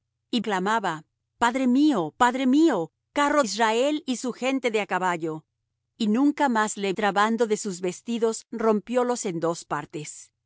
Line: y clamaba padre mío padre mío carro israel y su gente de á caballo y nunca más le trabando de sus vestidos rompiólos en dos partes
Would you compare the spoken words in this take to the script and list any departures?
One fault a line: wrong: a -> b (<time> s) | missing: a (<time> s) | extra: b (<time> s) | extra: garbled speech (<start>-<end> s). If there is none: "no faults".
no faults